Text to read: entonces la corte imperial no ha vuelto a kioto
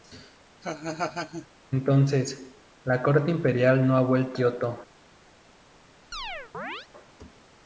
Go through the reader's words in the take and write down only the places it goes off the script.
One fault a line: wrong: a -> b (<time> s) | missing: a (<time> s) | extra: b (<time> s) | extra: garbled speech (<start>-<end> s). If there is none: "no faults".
missing: a (4.4 s)